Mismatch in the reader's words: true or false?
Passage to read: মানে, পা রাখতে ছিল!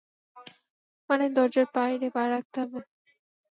true